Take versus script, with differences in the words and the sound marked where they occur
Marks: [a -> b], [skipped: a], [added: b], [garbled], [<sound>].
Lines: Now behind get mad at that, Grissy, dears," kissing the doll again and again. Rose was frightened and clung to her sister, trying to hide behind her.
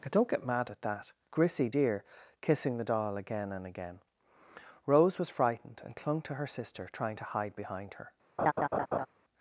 Now [behind -> don't] get mad at that, Grissy, [dears," -> dear] kissing the doll again and again. Rose was frightened and clung to her sister, trying to hide behind her. [laugh]